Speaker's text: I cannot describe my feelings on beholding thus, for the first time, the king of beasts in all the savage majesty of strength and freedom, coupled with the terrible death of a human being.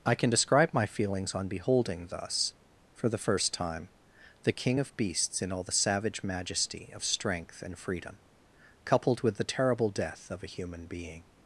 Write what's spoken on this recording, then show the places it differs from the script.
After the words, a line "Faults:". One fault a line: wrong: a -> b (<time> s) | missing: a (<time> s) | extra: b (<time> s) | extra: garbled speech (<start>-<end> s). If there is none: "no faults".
I can describe my feelings on beholding thus, for the first time, the king of beasts in all the savage majesty of strength and freedom, coupled with the terrible death of a human being.
Faults:
wrong: cannot -> can (0.1 s)